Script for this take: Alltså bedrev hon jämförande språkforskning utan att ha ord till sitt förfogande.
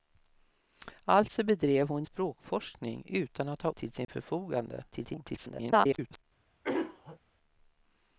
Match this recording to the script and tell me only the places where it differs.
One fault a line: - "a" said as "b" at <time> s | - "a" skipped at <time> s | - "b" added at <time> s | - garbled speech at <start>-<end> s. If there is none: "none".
- "jämförande" skipped at 2.0 s
- "ord" skipped at 3.7 s
- garbled speech at 4.9-6.2 s